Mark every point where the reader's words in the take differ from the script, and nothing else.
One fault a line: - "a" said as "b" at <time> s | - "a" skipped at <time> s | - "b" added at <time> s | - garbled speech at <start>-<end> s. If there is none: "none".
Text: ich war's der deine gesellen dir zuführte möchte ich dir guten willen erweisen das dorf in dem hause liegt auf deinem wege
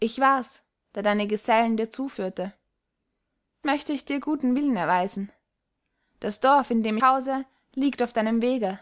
none